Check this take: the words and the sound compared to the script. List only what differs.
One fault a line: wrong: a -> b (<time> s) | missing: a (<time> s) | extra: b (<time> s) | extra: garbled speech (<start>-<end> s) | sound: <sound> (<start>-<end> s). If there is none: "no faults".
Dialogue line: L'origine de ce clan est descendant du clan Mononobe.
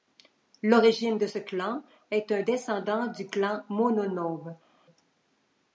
extra: un (2.3 s)